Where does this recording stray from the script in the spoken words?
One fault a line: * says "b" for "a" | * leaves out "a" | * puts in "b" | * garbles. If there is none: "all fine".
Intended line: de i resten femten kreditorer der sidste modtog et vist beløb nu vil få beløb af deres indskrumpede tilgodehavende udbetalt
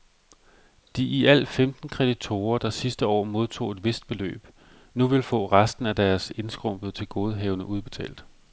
* says "alt" for "resten"
* puts in "år"
* says "resten" for "beløb"